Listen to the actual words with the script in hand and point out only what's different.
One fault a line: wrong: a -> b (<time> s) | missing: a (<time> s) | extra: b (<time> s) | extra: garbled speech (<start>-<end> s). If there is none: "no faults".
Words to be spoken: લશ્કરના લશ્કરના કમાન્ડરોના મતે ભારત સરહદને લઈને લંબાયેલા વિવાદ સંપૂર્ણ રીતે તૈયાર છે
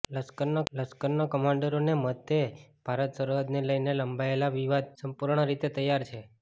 no faults